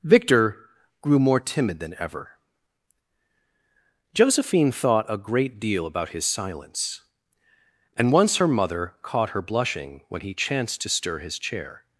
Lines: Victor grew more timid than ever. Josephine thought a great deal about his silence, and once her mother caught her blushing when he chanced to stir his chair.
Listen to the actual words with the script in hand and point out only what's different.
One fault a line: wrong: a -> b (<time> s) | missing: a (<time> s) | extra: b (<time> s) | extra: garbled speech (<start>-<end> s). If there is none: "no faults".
no faults